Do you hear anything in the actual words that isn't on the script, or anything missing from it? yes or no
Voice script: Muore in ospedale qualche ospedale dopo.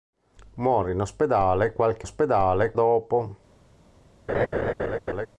no